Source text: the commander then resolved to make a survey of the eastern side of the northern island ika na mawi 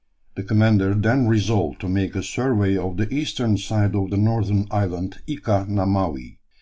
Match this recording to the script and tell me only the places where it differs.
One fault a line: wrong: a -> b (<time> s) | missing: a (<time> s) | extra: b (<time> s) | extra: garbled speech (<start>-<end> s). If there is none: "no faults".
no faults